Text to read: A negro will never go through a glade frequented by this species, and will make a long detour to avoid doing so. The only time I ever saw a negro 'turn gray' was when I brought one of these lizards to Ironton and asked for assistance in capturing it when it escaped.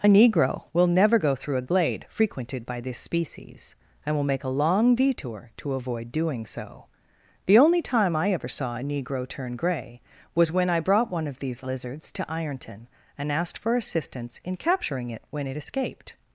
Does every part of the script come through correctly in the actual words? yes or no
yes